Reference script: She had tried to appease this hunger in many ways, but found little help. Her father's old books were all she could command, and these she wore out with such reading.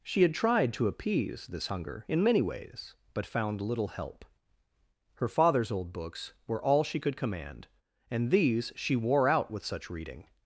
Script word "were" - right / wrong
right